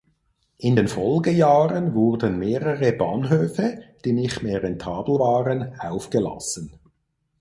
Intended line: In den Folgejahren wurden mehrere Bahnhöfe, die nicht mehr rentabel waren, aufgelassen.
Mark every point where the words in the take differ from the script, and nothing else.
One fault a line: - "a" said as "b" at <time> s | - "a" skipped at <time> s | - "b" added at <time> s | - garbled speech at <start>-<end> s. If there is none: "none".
none